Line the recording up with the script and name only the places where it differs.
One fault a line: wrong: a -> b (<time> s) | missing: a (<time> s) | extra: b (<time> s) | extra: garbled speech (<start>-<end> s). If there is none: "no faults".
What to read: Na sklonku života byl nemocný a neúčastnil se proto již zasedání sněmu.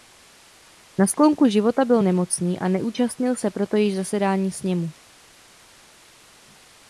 no faults